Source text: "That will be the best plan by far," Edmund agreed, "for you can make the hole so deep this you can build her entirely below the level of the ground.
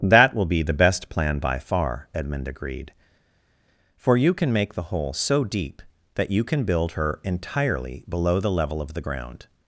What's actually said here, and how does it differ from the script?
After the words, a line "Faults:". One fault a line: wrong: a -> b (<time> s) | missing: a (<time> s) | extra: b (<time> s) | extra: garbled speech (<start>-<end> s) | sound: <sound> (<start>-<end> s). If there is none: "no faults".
"That will be the best plan by far," Edmund agreed, "for you can make the hole so deep that you can build her entirely below the level of the ground.
Faults:
wrong: this -> that (6.1 s)